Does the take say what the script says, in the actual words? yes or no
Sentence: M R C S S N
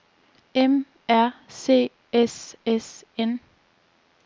yes